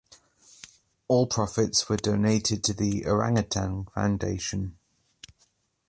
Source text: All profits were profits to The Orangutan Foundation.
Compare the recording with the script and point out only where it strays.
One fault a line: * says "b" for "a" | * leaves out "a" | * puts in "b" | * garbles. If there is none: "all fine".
* says "donated" for "profits"